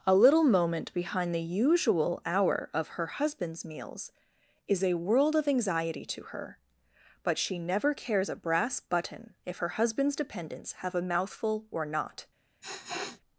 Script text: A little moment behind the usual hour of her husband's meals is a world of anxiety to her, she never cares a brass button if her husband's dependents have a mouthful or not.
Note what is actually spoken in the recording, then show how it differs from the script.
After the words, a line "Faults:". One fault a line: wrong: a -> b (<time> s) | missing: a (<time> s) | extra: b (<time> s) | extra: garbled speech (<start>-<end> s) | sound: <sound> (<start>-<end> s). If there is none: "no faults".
A little moment behind the usual hour of her husband's meals is a world of anxiety to her, but she never cares a brass button if her husband's dependents have a mouthful or not.
Faults:
extra: but (7.2 s)
sound: sniff (12.6-13.2 s)